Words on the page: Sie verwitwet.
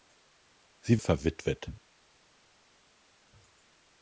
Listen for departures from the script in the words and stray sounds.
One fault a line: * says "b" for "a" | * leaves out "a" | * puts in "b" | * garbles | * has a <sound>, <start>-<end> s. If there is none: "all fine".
all fine